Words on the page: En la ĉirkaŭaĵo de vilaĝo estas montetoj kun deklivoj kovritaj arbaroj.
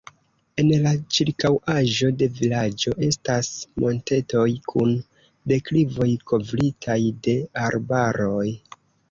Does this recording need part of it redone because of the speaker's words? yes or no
yes